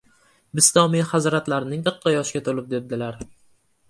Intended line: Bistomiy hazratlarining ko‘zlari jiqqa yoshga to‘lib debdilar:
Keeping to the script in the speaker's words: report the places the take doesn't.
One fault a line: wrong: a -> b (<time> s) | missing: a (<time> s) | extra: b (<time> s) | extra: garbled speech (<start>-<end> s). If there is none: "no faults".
missing: ko‘zlari (1.9 s)